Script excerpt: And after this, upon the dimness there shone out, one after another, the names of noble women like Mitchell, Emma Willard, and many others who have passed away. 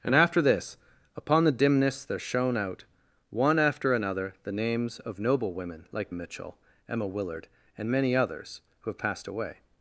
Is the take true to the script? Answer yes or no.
yes